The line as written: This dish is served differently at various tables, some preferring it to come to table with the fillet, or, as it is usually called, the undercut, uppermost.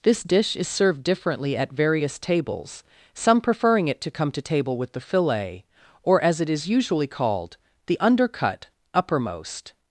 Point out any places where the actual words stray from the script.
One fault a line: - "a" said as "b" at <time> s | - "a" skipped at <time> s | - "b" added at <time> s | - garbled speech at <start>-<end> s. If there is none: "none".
none